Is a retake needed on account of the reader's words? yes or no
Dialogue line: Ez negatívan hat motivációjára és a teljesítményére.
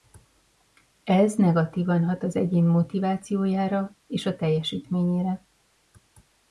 yes